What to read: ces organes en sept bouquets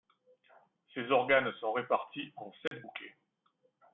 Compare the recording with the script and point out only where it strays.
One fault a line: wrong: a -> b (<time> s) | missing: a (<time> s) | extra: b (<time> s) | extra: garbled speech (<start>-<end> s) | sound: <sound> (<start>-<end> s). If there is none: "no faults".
extra: sont répartis (1.6 s)
sound: dropout (2.7-2.7 s)